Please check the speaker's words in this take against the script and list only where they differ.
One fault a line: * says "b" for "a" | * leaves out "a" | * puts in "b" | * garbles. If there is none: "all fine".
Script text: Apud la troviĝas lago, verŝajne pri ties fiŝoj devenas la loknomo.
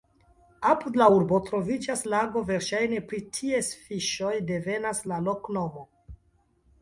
* puts in "urbo"